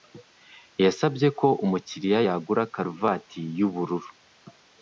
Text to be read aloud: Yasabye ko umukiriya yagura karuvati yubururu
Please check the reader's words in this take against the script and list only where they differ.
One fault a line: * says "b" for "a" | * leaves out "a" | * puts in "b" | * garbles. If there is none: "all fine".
all fine